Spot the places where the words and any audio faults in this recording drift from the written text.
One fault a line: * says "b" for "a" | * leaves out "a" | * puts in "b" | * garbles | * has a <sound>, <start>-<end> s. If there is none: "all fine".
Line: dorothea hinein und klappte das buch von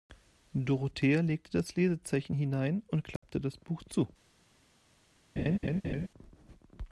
* puts in "legte das lesezeichen"
* has a dropout, 3.2-3.2 s
* says "zu" for "von"
* has a laugh, 5.4-6.1 s